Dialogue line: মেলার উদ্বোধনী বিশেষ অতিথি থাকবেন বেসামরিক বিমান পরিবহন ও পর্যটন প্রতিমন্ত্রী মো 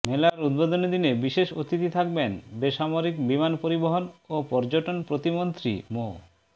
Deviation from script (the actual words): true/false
true